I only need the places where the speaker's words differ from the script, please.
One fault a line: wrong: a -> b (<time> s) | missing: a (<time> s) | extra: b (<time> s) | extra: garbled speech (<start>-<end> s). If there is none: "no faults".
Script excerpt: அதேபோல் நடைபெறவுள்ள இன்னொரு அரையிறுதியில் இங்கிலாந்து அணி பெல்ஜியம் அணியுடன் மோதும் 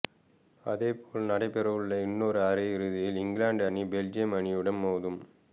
no faults